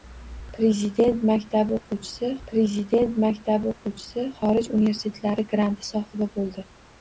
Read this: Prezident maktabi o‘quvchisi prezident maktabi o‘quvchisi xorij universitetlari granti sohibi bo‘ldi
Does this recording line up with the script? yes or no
yes